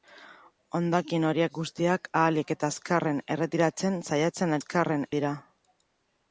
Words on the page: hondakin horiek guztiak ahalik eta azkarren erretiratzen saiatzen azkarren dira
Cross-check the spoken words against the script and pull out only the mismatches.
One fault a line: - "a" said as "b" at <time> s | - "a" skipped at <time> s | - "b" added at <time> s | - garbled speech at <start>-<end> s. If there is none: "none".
none